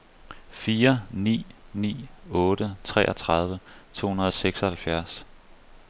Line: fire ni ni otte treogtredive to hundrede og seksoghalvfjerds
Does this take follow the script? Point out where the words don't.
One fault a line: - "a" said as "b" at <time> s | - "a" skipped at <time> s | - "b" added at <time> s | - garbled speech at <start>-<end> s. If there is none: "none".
none